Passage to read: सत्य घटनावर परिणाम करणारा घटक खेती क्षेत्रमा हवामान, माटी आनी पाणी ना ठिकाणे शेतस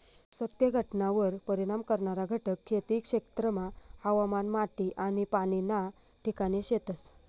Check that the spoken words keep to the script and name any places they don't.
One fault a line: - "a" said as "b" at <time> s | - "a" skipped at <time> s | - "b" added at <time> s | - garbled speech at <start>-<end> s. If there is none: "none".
none